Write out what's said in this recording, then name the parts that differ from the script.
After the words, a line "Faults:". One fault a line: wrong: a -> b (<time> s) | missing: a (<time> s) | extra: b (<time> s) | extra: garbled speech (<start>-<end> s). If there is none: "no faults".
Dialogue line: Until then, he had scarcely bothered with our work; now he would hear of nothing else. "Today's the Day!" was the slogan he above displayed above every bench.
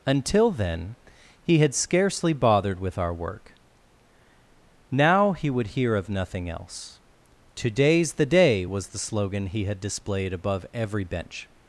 Until then, he had scarcely bothered with our work; now he would hear of nothing else. "Today's the Day!" was the slogan he had displayed above every bench.
Faults:
wrong: above -> had (9.7 s)